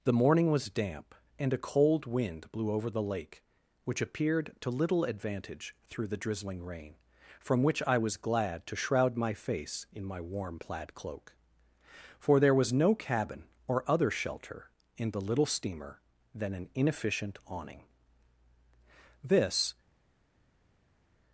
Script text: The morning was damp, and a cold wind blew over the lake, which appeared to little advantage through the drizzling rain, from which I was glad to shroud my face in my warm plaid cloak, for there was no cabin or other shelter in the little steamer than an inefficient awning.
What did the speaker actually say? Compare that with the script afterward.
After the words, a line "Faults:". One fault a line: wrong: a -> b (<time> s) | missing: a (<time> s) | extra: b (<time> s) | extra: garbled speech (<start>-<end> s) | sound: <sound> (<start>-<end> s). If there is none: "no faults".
The morning was damp, and a cold wind blew over the lake, which appeared to little advantage through the drizzling rain, from which I was glad to shroud my face in my warm plaid cloak, for there was no cabin or other shelter in the little steamer than an inefficient awning. This
Faults:
extra: This (19.2 s)